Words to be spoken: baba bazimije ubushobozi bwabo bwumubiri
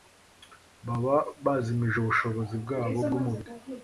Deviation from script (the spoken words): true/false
false